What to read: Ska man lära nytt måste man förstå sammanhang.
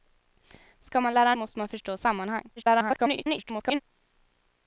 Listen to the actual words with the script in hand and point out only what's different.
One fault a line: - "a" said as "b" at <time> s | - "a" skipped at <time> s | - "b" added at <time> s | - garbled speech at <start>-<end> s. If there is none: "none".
- "nytt" skipped at 1.4 s
- garbled speech at 2.6-3.8 s